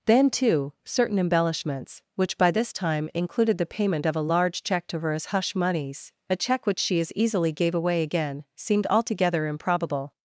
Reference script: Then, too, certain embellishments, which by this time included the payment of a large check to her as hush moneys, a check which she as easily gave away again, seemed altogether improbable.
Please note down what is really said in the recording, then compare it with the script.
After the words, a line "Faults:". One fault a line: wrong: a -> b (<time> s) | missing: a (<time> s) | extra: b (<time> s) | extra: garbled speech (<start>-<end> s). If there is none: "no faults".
Then, too, certain embellishments, which by this time included the payment of a large check to her as hush moneys, a check which she as easily gave away again, seemed altogether improbable.
Faults:
no faults